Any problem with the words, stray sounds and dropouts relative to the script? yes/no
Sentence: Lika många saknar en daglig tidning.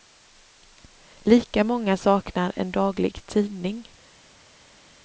no